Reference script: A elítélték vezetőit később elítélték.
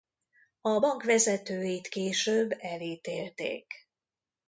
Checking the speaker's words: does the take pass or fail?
fail